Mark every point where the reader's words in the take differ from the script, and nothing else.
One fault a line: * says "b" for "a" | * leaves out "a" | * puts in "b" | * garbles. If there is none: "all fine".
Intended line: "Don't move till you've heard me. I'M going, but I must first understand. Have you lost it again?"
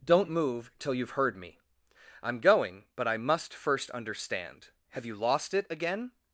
all fine